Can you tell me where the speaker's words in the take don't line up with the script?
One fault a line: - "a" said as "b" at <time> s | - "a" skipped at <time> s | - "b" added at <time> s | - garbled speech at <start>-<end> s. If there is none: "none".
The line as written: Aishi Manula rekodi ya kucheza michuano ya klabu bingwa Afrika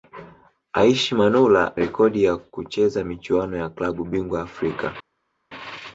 none